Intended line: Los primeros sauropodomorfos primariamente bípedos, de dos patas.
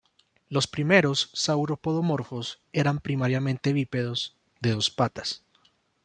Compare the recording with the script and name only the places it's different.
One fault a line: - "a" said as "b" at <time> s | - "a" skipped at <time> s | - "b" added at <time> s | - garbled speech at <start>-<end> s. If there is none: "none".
- "eran" added at 2.7 s